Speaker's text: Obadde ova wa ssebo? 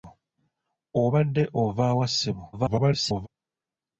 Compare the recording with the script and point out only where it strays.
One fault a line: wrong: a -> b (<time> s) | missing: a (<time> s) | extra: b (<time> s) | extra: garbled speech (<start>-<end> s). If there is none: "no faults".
extra: garbled speech (2.5-3.3 s)